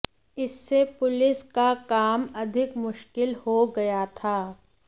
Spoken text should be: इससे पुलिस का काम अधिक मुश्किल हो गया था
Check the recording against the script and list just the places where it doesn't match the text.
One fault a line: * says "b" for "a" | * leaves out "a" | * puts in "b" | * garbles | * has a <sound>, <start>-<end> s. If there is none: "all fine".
all fine